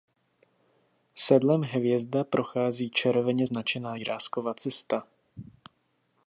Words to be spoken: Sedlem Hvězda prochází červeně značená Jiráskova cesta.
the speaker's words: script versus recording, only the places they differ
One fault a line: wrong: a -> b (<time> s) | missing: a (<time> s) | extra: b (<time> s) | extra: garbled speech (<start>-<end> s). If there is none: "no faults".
no faults